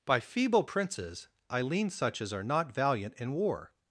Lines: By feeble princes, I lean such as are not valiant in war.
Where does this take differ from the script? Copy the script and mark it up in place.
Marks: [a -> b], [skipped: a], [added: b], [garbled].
By feeble princes, I lean such as are not valiant in war.